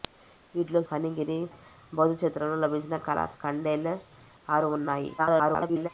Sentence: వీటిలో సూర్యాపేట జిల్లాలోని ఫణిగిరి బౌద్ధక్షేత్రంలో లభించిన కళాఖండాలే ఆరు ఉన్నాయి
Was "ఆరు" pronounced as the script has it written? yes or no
yes